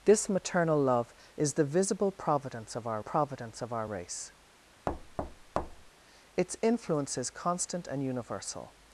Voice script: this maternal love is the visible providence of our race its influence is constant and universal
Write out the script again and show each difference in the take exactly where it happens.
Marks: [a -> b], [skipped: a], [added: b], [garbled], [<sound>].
this maternal love is the visible providence of our [added: providence of our] race [thud] its influence is constant and universal